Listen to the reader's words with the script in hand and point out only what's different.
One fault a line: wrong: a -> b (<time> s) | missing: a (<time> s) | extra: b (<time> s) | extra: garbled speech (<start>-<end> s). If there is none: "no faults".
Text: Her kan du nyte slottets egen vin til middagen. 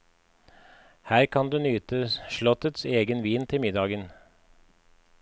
no faults